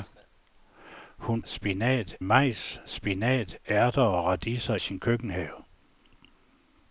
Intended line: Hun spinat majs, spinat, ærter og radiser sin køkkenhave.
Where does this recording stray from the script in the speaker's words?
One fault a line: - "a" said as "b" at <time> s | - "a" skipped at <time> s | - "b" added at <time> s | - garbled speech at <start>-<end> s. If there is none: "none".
none